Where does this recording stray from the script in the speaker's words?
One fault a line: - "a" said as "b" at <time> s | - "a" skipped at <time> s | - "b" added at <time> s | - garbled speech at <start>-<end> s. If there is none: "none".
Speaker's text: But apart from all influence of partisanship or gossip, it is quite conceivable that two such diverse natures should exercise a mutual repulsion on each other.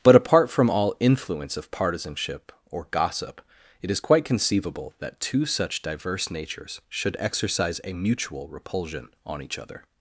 none